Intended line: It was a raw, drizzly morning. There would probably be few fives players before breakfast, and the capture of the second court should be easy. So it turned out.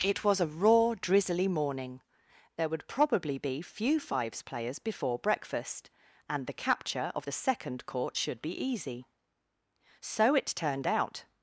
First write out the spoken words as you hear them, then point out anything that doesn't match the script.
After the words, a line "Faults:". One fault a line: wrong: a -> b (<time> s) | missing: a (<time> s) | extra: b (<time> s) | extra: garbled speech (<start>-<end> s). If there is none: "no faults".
It was a raw, drizzly morning. There would probably be few fives players before breakfast, and the capture of the second court should be easy. So it turned out.
Faults:
no faults